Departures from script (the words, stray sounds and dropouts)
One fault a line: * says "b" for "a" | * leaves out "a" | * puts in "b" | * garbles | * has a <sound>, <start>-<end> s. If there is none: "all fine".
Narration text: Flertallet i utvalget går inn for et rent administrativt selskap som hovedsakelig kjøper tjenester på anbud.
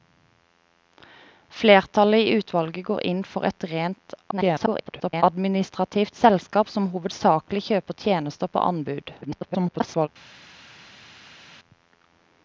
* garbles
* garbles